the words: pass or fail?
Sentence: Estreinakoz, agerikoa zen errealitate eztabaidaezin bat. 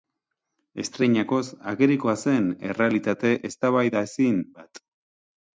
pass